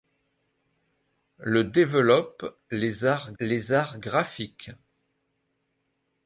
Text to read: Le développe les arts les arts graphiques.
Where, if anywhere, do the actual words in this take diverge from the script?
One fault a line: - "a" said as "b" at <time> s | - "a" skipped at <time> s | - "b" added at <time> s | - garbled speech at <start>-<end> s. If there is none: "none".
none